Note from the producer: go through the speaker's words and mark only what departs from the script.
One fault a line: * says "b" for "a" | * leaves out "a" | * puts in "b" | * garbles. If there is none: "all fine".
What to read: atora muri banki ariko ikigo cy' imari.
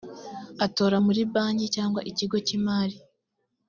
* says "cyangwa" for "ariko"